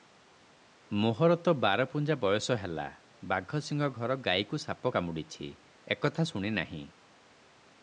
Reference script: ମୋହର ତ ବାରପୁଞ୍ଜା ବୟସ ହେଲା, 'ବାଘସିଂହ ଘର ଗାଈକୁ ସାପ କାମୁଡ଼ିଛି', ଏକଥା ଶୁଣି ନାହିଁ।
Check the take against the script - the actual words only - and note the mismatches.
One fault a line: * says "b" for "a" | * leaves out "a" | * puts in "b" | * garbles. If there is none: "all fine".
all fine